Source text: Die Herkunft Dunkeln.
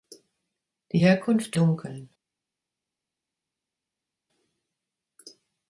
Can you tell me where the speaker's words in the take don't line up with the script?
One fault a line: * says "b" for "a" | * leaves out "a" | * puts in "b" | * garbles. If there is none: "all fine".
all fine